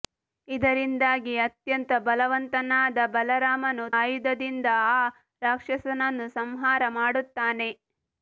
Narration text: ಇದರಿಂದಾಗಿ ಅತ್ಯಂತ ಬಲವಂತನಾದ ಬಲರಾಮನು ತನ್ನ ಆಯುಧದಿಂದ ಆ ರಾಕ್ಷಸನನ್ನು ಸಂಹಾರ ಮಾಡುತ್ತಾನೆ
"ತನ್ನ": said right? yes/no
no